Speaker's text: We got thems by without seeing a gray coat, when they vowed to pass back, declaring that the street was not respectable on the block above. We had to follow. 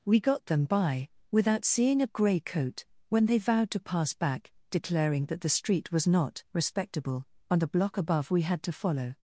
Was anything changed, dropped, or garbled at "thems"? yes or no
yes